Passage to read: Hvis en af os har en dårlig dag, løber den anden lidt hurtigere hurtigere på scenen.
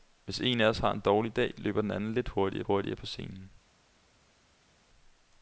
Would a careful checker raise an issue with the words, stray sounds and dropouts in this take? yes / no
no